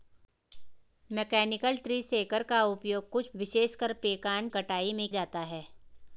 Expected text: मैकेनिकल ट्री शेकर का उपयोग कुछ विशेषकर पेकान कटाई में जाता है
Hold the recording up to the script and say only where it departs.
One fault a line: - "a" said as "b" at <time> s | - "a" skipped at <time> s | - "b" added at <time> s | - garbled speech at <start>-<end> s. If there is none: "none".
none